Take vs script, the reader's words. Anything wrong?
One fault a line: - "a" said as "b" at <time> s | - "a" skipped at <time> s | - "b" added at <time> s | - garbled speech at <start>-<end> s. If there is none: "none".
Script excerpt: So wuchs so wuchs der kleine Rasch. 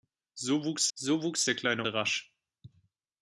none